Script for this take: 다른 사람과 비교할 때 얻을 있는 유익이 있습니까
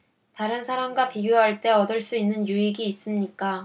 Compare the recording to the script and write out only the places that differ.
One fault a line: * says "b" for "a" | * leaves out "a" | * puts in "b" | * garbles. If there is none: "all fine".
* puts in "수"